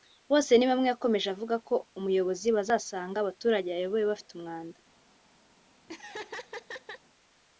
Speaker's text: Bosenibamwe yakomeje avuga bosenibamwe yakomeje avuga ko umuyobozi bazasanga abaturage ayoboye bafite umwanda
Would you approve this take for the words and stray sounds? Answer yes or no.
no